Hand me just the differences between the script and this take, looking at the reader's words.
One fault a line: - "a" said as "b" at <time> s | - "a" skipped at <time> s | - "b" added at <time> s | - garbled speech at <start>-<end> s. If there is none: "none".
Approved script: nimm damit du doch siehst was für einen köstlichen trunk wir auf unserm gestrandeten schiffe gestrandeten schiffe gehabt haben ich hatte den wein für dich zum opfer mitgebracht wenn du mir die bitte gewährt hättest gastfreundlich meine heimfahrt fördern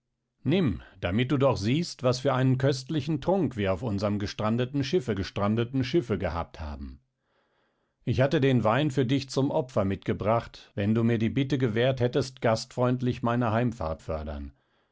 none